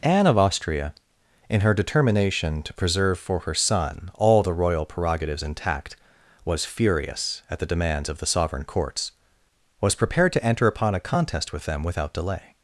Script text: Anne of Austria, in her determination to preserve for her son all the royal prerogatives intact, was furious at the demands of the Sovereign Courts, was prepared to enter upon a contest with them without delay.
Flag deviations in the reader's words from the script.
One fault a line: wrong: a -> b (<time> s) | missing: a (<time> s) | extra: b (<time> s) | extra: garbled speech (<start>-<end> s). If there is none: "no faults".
no faults